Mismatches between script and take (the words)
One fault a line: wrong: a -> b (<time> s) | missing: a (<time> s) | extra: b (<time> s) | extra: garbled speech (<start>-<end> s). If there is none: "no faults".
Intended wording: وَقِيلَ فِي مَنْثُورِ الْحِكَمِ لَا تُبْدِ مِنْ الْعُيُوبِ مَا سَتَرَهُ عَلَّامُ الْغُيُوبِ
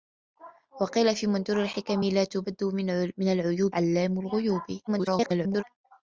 missing: مَا سَتَرَهُ (3.7 s)
extra: garbled speech (4.9-5.6 s)